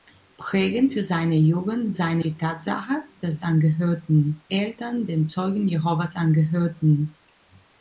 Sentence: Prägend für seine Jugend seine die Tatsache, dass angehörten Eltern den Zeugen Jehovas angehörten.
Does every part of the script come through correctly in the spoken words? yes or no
yes